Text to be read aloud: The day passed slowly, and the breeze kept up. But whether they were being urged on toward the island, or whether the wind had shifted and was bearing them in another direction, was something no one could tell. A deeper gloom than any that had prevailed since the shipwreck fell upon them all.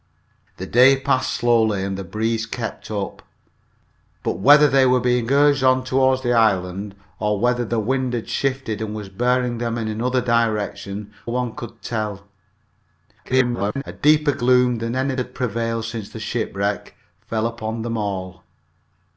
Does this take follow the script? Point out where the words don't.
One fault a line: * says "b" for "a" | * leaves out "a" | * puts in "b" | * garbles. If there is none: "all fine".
* leaves out "was something no"
* garbles
* leaves out "that"